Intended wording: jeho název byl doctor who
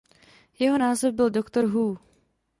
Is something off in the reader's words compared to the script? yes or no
no